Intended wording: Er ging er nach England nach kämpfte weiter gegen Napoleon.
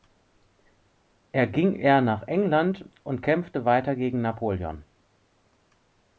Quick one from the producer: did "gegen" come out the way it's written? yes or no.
yes